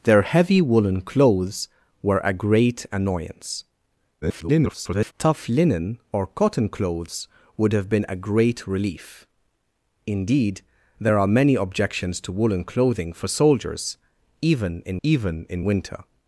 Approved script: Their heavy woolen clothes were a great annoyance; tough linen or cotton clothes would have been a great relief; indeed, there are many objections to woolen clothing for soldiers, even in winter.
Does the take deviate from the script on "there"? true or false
false